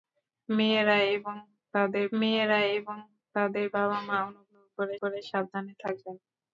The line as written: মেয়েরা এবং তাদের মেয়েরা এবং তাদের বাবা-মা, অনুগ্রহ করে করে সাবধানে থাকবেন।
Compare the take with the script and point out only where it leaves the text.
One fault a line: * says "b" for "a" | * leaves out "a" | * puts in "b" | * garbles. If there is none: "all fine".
all fine